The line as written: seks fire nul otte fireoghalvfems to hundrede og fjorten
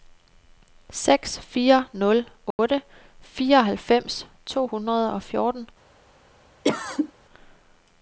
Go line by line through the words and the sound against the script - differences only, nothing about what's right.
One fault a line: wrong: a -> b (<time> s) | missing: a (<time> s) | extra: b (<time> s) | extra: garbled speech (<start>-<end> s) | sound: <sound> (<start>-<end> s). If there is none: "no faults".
sound: dropout (2.5-2.6 s)
sound: cough (6.6-7.1 s)